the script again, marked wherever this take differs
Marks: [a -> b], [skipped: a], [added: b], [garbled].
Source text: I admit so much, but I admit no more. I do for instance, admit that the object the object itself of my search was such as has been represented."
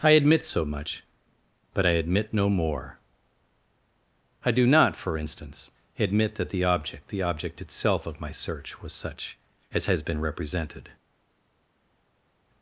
I admit so much, but I admit no more. I do [added: not] for instance, admit that the object the object itself of my search was such as has been represented."